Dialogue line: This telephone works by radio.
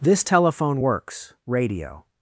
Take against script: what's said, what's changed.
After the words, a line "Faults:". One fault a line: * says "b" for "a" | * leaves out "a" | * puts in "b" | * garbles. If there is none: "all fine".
This telephone works radio.
Faults:
* leaves out "by"